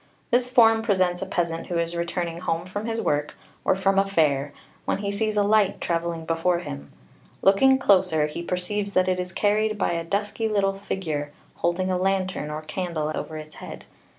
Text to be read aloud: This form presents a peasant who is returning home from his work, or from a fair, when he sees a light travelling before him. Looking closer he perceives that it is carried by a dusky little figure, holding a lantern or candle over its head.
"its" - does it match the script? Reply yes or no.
yes